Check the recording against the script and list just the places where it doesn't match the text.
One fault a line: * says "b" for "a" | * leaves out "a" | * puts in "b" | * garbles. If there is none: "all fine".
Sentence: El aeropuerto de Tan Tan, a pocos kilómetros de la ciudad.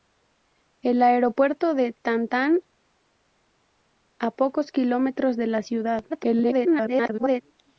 * garbles